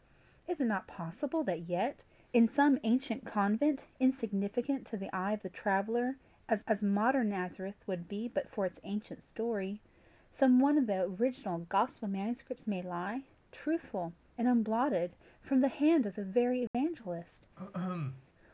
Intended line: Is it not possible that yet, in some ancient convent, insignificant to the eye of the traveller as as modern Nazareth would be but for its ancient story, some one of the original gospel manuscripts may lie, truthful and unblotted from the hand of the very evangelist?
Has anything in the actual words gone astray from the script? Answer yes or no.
no